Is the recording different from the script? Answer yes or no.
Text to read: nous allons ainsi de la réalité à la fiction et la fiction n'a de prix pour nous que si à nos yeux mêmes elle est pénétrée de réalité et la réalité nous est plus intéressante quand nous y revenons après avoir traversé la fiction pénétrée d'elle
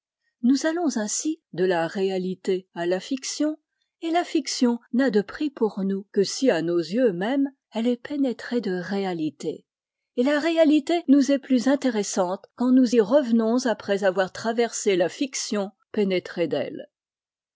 no